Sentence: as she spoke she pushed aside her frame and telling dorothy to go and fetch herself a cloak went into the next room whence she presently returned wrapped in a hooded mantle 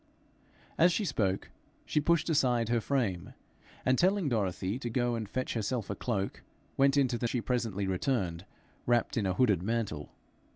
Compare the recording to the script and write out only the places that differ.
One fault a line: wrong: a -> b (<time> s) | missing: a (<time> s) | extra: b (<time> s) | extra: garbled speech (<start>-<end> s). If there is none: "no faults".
missing: next room whence (7.3 s)